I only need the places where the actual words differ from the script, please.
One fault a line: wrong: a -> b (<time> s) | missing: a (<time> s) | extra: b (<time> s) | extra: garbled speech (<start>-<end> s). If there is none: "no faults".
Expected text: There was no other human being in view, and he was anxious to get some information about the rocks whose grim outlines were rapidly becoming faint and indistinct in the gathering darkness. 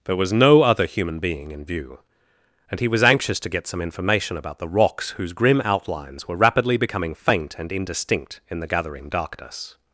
no faults